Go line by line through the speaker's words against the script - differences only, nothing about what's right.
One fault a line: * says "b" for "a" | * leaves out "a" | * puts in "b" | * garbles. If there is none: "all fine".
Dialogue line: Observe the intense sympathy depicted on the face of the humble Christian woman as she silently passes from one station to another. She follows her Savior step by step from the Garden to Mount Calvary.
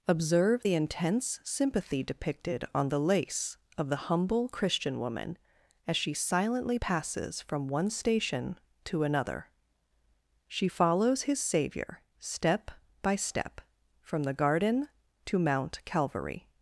* says "lace" for "face"
* says "his" for "her"